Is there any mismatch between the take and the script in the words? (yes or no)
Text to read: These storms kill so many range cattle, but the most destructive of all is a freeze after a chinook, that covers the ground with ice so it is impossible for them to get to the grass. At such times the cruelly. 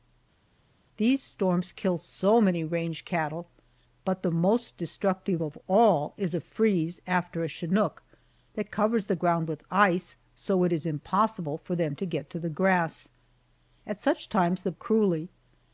no